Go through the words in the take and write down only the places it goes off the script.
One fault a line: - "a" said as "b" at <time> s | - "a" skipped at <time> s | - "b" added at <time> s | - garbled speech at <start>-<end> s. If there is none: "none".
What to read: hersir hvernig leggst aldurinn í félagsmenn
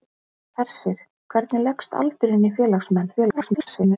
- garbled speech at 3.2-4.0 s